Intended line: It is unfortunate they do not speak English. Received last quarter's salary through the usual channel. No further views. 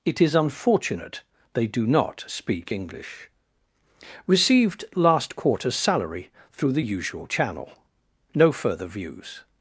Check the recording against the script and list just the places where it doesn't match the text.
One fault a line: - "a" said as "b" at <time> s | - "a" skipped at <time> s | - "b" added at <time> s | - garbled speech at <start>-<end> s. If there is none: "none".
none